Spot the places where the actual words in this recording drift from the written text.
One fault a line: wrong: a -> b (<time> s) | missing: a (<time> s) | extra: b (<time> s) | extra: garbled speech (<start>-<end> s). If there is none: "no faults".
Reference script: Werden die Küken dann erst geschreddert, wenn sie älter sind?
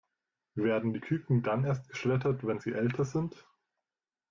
no faults